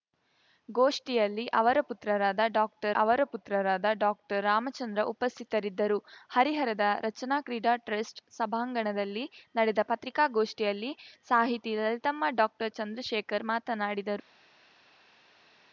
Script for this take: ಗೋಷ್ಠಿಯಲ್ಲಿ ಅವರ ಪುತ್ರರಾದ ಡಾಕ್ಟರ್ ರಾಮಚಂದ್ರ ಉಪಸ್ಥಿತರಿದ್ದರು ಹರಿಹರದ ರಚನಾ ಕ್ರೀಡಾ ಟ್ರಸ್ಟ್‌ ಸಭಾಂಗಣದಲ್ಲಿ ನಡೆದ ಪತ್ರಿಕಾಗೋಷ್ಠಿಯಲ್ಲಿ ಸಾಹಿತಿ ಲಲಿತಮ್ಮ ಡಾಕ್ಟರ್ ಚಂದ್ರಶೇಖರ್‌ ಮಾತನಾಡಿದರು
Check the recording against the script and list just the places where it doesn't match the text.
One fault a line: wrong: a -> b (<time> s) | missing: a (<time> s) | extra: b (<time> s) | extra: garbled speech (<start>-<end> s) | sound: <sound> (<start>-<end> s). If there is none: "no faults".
extra: ಅವರ ಪುತ್ರರಾದ ಡಾಕ್ಟರ್ (2.9 s)